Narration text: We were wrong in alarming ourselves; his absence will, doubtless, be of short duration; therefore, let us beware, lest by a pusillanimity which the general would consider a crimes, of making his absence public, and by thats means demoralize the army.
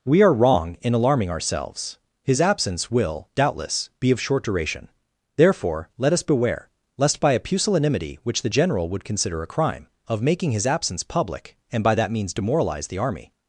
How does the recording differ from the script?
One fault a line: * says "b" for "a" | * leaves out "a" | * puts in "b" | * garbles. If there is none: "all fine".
* says "are" for "were"
* says "crime" for "crimes"
* says "that" for "thats"